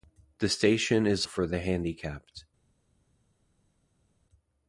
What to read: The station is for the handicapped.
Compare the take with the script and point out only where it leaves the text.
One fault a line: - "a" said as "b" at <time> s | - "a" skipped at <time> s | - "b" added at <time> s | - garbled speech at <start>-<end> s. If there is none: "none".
none